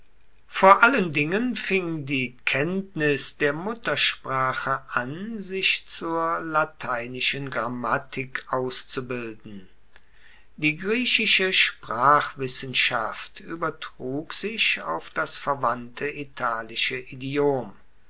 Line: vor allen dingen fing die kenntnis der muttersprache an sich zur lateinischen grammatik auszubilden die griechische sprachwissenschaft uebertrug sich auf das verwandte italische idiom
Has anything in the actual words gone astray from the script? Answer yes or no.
no